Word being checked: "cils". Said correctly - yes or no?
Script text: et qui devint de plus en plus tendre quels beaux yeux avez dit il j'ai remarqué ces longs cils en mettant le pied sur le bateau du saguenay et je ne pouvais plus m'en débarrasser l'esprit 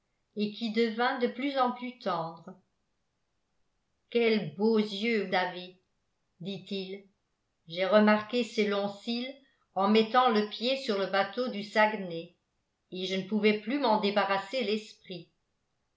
yes